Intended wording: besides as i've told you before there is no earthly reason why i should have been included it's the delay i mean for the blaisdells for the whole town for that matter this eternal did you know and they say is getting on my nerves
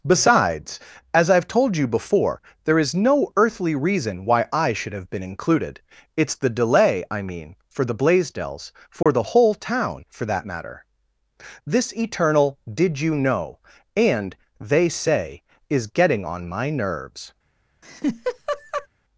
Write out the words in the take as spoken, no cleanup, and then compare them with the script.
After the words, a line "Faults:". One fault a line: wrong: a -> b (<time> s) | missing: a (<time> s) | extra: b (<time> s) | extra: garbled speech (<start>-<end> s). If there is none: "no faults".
besides as i've told you before there is no earthly reason why i should have been included it's the delay i mean for the blaisdells for the whole town for that matter this eternal did you know and they say is getting on my nerves
Faults:
no faults